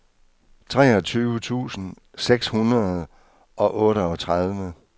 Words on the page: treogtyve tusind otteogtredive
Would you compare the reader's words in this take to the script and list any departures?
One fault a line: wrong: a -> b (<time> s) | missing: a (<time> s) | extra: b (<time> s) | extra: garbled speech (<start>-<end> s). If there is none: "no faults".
extra: seks hundrede og (2.2 s)